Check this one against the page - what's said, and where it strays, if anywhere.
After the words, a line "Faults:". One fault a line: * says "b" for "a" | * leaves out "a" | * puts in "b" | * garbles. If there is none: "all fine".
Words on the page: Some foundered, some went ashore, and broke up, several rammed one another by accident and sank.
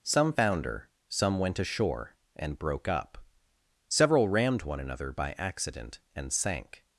Some founder, some went ashore, and broke up, several rammed one another by accident and sank.
Faults:
* says "founder" for "foundered"